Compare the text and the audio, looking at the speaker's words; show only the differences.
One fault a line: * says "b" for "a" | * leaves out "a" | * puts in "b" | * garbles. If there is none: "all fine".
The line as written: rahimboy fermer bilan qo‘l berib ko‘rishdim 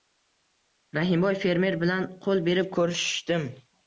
all fine